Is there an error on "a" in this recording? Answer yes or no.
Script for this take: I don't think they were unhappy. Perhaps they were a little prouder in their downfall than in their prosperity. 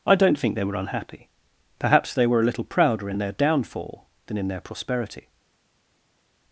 no